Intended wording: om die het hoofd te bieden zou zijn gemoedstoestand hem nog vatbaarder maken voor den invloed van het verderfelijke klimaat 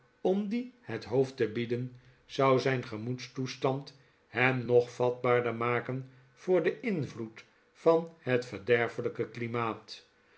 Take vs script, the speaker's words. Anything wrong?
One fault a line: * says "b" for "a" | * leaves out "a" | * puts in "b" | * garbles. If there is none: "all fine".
all fine